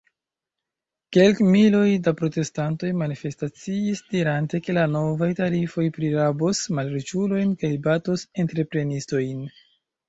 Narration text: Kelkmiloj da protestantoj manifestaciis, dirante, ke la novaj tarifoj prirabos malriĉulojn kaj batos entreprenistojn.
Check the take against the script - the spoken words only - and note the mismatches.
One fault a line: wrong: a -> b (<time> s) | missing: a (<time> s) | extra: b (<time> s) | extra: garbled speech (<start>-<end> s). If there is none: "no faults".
no faults